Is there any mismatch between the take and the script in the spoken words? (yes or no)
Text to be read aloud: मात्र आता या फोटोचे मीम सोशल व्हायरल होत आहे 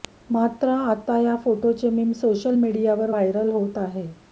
yes